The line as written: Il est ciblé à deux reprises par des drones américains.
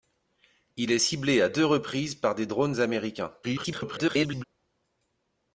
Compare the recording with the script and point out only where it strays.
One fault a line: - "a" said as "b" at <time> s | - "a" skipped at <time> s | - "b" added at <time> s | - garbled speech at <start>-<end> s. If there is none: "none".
- garbled speech at 3.4-4.4 s